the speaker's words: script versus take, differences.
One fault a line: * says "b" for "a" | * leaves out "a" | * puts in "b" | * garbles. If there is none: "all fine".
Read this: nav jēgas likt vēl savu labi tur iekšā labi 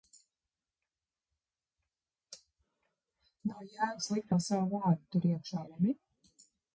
* says "vārdu" for "labi"